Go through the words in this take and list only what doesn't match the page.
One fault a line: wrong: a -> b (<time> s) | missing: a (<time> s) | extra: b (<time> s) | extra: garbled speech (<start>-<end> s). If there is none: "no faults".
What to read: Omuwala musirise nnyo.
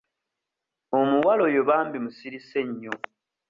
extra: oyo bambi (1.5 s)